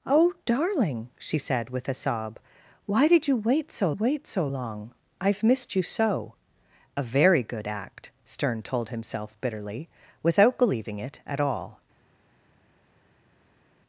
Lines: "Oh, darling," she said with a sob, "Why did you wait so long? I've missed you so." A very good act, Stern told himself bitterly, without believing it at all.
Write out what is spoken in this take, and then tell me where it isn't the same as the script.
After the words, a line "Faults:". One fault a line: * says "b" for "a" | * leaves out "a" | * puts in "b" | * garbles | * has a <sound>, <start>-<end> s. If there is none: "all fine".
"Oh, darling," she said with a sob, "Why did you wait so wait so long? I've missed you so." A very good act, Stern told himself bitterly, without believing it at all.
Faults:
* puts in "wait so"